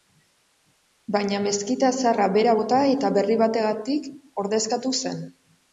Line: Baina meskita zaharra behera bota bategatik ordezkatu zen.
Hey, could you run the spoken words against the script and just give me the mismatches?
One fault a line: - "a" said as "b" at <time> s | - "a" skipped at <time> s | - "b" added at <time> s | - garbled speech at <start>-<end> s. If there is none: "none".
- "eta berri" added at 2.9 s